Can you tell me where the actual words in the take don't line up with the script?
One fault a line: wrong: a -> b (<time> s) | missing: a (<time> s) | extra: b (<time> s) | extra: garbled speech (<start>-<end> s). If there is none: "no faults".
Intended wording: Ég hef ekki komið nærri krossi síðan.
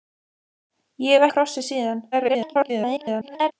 missing: ekki komið nærri (1.3 s)
extra: garbled speech (2.1-3.5 s)